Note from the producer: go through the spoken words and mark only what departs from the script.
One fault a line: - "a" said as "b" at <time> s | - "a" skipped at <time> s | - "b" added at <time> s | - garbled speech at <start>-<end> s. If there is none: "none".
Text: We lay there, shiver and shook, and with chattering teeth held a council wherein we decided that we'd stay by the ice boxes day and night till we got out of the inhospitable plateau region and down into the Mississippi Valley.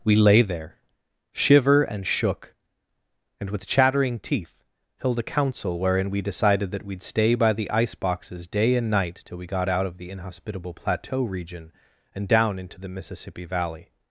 none